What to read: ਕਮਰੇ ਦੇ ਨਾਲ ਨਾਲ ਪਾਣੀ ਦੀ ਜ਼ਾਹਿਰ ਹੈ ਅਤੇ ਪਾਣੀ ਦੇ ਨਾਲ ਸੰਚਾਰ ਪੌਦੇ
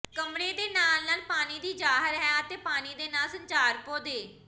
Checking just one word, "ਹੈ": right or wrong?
right